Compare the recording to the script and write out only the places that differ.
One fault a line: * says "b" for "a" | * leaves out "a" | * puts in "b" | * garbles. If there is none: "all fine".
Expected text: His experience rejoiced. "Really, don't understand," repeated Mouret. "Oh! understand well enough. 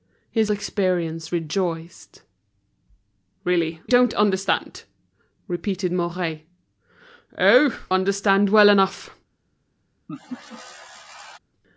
all fine